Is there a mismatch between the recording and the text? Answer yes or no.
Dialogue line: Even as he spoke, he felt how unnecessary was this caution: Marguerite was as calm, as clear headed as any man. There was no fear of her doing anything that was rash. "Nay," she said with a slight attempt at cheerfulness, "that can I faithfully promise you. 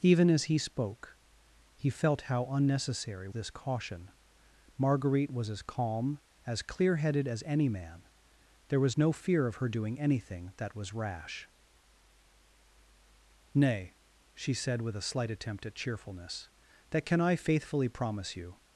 yes